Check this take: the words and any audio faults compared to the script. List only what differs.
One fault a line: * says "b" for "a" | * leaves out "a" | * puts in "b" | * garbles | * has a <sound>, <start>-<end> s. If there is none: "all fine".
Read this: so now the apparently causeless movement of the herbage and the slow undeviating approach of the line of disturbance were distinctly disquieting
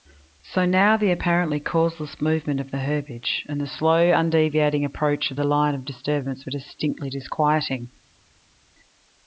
all fine